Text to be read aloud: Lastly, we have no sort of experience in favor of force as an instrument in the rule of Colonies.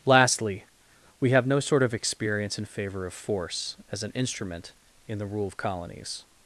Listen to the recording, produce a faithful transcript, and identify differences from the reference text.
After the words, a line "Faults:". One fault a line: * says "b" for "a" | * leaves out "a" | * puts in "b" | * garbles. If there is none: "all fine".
Lastly, we have no sort of experience in favor of force as an instrument in the rule of Colonies.
Faults:
all fine